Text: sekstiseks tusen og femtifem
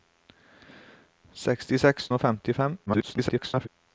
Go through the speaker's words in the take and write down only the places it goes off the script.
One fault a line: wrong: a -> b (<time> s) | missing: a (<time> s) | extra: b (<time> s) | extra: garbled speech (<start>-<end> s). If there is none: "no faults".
missing: tusen (2.1 s)
extra: garbled speech (2.9-3.7 s)